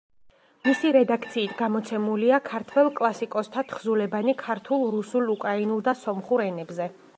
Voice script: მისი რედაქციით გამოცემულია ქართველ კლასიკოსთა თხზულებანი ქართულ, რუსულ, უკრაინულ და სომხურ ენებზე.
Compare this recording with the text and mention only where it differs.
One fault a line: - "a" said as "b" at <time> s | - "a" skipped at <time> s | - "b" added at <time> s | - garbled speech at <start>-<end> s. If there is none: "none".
none